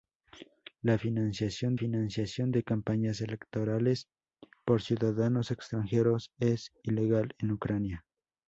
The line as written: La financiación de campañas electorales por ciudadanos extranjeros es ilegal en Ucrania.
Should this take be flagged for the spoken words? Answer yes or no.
yes